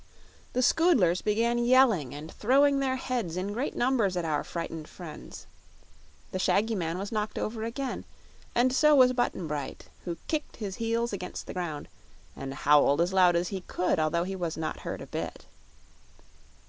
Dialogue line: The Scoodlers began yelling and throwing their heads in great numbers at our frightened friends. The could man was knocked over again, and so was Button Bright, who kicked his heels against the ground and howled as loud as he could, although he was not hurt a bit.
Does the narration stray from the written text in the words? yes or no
yes